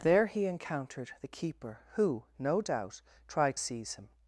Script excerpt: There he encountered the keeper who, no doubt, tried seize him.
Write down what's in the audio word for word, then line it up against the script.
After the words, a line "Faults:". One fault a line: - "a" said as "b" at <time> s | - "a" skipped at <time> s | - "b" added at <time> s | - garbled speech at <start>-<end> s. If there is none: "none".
There he encountered the keeper who, no doubt, tried seize him.
Faults:
none